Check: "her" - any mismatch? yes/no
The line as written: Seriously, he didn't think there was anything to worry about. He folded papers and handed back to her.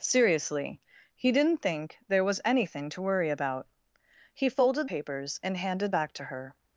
no